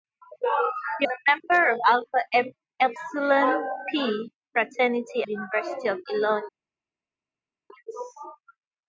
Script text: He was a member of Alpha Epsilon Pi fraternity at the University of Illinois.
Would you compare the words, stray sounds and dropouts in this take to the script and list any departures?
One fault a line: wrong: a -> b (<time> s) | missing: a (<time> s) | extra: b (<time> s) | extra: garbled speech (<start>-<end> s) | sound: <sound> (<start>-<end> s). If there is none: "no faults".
missing: was (1.1 s)
missing: at (5.2 s)